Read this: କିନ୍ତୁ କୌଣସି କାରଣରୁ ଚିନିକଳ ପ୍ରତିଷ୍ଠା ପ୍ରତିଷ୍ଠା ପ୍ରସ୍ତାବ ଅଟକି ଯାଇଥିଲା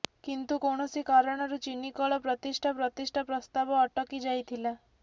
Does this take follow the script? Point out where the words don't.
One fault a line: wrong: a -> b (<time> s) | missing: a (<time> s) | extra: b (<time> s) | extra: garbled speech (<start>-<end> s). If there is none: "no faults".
no faults